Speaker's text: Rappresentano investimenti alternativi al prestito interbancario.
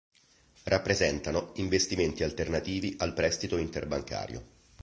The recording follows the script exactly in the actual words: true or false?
true